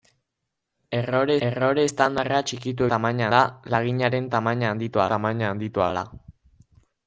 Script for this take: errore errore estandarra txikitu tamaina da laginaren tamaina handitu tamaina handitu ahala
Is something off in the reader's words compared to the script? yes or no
no